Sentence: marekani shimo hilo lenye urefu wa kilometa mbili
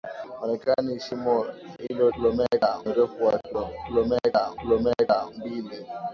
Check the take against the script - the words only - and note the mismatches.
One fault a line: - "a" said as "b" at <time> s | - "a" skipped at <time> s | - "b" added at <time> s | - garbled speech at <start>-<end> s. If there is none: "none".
- "lenye" said as "kilometa" at 2.2 s
- "kilometa" added at 4.6 s